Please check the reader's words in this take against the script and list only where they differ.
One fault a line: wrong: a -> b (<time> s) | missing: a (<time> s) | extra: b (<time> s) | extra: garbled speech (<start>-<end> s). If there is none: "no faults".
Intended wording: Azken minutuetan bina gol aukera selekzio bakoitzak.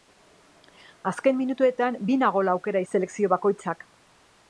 no faults